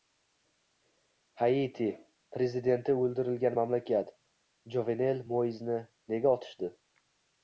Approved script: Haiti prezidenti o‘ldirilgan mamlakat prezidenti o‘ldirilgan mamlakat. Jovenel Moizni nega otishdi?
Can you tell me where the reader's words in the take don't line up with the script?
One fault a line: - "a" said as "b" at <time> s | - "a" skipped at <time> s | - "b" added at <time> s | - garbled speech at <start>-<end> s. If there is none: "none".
- "prezidenti o‘ldirilgan mamlakat" skipped at 4.1 s